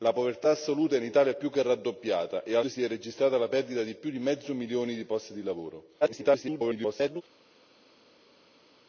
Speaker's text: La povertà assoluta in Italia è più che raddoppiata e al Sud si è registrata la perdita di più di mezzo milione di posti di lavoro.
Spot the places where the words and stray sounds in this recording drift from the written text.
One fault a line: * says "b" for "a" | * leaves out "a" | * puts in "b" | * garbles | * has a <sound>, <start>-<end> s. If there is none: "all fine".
* leaves out "Sud"
* garbles